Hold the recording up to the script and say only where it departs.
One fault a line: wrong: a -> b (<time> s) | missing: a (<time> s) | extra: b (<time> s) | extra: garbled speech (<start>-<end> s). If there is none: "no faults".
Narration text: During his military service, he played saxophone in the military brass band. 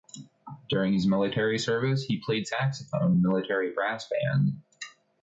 missing: in (3.1 s)